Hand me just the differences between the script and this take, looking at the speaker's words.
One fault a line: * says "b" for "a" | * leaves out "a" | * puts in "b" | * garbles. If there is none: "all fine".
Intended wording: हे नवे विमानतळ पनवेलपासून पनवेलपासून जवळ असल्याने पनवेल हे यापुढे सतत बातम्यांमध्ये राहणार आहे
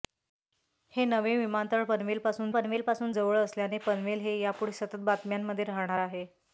all fine